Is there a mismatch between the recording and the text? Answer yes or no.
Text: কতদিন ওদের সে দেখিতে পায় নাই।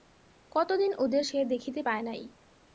no